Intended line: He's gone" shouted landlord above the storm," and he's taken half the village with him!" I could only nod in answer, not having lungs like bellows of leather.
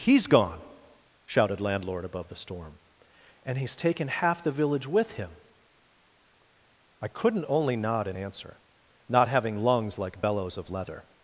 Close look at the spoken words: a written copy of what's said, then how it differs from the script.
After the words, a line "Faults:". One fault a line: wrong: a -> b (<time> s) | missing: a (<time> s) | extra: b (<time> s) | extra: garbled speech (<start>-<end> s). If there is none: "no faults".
He's gone" shouted landlord above the storm," and he's taken half the village with him!" I couldn't only nod in answer, not having lungs like bellows of leather.
Faults:
wrong: could -> couldn't (7.1 s)